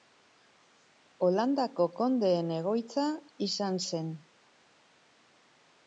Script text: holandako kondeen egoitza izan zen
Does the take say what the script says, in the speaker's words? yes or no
yes